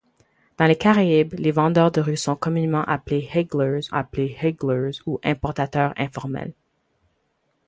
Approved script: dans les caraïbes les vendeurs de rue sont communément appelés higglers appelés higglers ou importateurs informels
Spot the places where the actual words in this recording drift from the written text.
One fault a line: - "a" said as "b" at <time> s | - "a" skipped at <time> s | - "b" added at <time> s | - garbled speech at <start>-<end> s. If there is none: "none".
none